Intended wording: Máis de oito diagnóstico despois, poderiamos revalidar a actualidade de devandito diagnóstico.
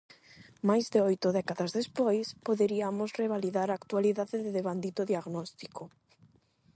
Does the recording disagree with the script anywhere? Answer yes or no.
yes